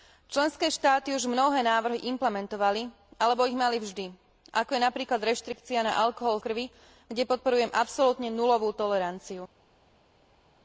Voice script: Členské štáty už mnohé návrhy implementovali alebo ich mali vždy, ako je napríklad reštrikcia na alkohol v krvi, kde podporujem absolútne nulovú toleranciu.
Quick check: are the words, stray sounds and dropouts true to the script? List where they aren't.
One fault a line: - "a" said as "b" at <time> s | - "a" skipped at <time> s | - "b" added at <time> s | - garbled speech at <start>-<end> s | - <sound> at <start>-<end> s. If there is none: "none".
- "v" skipped at 6.4 s